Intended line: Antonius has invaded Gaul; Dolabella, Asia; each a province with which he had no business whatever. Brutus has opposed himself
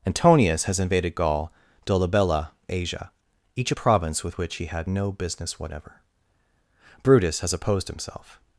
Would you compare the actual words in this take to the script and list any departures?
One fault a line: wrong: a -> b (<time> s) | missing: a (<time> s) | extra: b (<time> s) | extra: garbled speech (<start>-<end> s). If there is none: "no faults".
no faults